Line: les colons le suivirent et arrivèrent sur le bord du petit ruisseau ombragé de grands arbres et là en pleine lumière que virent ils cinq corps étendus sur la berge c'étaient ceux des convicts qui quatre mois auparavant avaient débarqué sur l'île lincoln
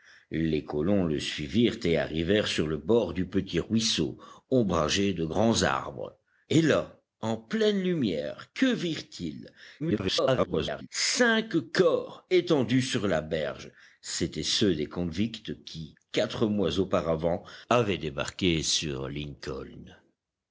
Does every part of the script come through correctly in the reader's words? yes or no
no